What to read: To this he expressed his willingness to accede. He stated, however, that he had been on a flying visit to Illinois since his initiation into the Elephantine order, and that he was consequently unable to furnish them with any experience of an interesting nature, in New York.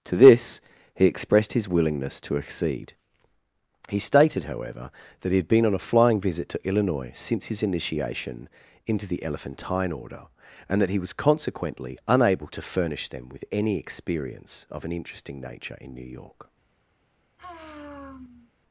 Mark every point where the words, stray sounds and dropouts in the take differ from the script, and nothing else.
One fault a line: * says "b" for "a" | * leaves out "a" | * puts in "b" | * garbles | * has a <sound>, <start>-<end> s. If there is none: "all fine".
* has a sigh, 17.4-18.5 s